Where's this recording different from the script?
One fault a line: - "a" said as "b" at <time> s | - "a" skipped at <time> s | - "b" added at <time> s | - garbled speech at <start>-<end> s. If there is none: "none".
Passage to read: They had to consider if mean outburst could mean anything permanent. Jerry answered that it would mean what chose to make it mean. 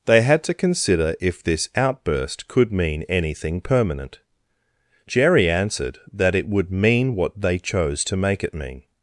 - "mean" said as "this" at 1.4 s
- "they" added at 7.4 s